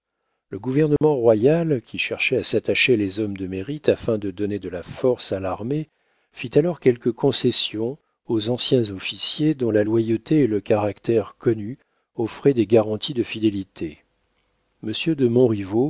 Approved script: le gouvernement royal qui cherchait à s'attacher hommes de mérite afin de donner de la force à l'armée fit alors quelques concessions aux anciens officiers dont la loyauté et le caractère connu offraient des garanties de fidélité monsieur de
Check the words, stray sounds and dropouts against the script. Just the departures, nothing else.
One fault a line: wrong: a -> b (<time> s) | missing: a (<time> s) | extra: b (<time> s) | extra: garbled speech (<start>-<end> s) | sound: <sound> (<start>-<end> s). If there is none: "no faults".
sound: dropout (1.0-1.0 s)
extra: les (3.0 s)